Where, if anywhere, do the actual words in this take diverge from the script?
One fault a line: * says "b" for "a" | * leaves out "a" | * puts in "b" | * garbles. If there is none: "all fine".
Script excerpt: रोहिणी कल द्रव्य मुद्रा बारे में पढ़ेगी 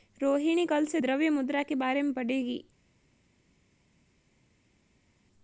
* puts in "से"
* puts in "के"